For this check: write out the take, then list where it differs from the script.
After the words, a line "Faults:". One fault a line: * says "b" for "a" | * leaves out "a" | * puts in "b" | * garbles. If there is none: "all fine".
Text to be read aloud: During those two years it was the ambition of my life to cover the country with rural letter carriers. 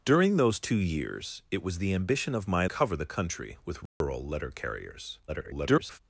During those two years it was the ambition of my cover the country with rural letter carriers. [garbled]
Faults:
* leaves out "life to"
* garbles